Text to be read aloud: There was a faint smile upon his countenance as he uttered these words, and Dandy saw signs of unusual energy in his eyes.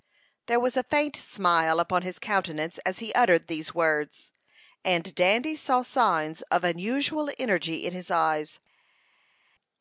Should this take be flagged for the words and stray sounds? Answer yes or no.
no